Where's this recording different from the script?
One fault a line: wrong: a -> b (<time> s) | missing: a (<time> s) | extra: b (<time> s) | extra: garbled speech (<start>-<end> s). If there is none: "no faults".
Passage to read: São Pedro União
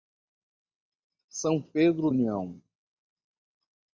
no faults